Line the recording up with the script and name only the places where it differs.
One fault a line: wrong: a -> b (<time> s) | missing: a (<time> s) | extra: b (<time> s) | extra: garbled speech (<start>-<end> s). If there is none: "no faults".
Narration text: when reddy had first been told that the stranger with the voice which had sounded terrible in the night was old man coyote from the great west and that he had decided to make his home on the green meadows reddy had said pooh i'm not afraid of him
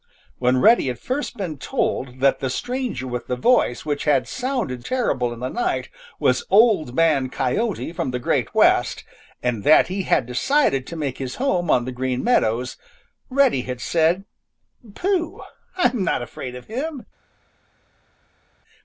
no faults